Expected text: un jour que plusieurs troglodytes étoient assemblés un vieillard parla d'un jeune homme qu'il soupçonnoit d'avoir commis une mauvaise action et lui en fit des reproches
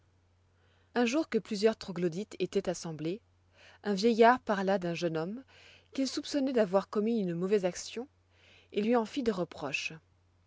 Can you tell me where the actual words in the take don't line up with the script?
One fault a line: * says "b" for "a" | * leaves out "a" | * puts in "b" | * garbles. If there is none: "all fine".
all fine